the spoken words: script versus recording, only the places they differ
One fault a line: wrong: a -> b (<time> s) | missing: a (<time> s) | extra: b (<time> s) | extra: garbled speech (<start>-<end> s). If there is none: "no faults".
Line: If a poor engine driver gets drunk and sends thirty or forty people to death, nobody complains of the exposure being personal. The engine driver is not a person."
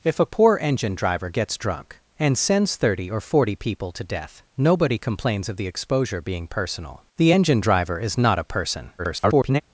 extra: garbled speech (9.0-9.6 s)